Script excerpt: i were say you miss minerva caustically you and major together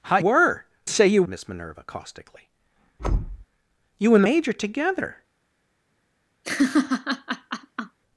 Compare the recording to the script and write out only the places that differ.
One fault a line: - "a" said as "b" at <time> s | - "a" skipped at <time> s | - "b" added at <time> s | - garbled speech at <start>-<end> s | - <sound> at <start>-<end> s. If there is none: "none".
- thud at 3.0-3.5 s
- laugh at 6.4-8.0 s